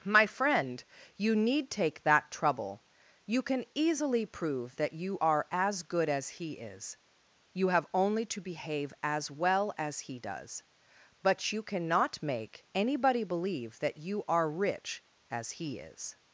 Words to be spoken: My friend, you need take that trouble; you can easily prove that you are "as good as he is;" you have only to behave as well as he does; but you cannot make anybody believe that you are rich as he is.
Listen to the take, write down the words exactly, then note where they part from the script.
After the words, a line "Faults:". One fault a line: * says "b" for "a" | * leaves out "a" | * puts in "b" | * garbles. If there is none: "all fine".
My friend, you need take that trouble; you can easily prove that you are "as good as he is;" you have only to behave as well as he does; but you cannot make anybody believe that you are rich as he is.
Faults:
all fine